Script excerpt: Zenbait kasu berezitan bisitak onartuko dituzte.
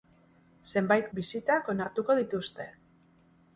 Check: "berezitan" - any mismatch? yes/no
yes